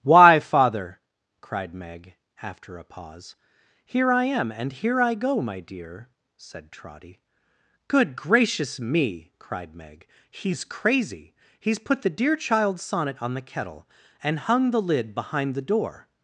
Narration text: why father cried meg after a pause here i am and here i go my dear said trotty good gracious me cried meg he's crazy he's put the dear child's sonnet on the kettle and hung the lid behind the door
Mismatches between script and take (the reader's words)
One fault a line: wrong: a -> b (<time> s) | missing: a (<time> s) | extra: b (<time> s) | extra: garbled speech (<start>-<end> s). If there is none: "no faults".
no faults